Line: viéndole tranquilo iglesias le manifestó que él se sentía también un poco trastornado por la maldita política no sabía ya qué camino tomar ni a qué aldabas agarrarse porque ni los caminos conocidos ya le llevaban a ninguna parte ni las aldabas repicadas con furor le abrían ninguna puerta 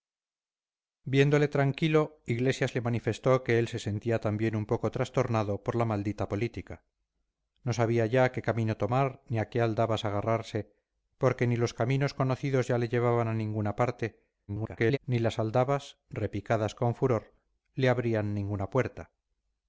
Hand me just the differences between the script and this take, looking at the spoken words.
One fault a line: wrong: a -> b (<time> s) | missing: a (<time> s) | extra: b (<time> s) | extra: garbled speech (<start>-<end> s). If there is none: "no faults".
extra: garbled speech (14.5-15.0 s)